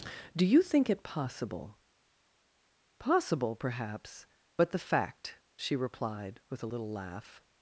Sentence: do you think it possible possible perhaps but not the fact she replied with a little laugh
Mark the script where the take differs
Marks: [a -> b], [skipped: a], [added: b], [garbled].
do you think it possible possible perhaps but [skipped: not] the fact she replied with a little laugh